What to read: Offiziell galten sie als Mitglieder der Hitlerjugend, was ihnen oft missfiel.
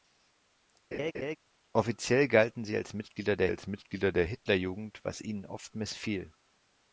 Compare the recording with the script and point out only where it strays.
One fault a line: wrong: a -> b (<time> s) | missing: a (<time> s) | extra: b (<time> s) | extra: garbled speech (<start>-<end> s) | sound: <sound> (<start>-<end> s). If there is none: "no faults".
sound: laugh (0.9-1.4 s)
extra: als Mitglieder der (3.5 s)